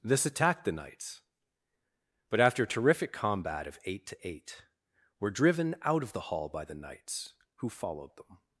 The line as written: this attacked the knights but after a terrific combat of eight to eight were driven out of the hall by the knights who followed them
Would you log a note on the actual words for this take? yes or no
no